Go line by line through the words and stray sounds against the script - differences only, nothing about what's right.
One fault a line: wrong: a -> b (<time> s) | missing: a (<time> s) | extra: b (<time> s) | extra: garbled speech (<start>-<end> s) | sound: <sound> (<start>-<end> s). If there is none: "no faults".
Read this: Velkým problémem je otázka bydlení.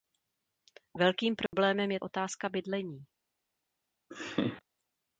sound: dropout (1.5-1.5 s)
sound: laugh (4.1-4.6 s)